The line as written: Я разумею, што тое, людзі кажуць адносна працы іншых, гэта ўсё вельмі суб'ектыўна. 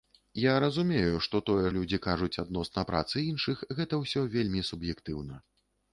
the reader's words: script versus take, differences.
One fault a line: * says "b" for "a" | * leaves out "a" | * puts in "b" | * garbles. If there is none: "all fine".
all fine